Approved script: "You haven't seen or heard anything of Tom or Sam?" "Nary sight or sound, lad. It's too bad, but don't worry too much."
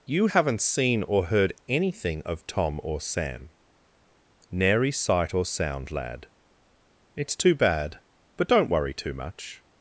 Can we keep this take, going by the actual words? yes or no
yes